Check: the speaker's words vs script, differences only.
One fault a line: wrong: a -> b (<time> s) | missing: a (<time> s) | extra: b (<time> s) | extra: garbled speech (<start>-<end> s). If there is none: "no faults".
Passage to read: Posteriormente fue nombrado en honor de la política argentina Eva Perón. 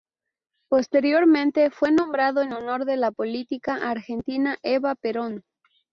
no faults